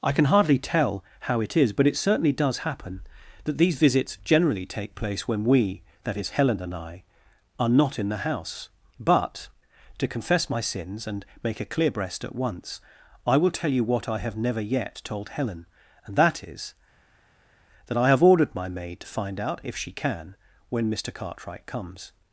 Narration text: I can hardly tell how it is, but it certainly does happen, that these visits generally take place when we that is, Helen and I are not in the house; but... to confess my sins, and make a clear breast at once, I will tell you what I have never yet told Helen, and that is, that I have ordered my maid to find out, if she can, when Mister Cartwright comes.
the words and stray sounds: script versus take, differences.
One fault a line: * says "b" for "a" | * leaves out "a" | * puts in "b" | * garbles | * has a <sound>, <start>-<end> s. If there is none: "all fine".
all fine